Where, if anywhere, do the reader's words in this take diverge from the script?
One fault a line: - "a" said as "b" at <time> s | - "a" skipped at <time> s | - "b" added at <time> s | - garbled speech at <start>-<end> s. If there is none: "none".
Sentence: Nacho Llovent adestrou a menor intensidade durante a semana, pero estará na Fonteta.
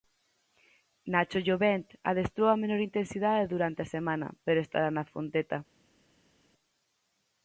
none